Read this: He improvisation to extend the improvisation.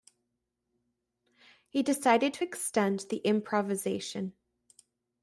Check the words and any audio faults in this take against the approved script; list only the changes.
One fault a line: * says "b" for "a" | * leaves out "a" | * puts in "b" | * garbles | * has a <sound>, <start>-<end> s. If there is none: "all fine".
* says "decided" for "improvisation"